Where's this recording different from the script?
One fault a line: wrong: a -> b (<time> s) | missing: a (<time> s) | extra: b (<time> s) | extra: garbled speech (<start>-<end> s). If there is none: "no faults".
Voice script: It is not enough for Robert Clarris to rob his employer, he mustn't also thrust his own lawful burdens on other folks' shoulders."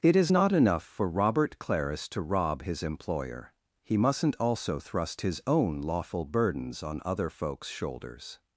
no faults